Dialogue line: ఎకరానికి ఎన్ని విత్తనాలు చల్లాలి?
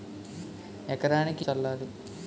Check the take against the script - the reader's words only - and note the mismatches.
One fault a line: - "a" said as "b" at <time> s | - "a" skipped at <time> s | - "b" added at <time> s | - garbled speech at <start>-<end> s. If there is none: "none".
- "ఎన్ని విత్తనాలు" skipped at 1.4 s